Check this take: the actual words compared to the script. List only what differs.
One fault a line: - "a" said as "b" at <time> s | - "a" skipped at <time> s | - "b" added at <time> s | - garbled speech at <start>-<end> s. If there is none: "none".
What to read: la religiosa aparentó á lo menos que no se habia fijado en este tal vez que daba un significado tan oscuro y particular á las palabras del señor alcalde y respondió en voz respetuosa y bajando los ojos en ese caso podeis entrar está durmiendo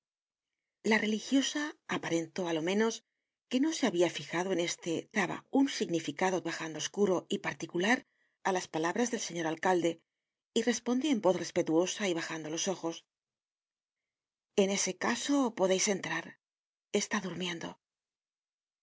- "tal vez que" skipped at 4.9 s
- "tan" said as "bajando" at 6.5 s